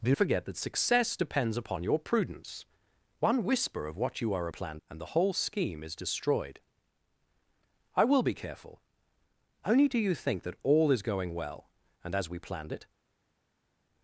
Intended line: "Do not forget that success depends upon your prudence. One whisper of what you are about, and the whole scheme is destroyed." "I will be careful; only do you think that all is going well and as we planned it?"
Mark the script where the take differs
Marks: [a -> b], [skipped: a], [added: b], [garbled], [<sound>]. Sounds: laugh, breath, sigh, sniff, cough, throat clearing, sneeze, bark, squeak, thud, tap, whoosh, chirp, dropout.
"Do [skipped: not] forget that success depends upon your prudence. One whisper of what you are [about, -> planned] and the whole scheme is destroyed." "I will be careful; only do you think that all is going well and as we planned it?"